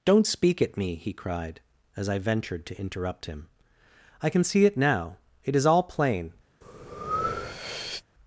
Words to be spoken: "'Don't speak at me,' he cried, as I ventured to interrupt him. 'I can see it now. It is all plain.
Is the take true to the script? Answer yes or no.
yes